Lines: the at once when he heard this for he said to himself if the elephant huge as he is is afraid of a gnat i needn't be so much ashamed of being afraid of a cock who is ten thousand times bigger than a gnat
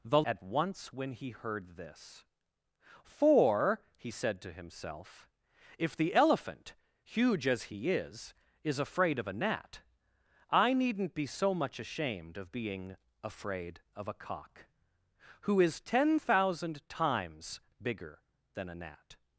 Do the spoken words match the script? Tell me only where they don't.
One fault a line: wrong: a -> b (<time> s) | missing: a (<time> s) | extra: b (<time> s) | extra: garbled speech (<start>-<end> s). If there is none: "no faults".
no faults